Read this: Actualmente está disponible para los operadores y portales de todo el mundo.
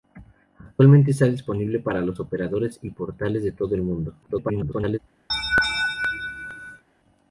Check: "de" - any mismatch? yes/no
no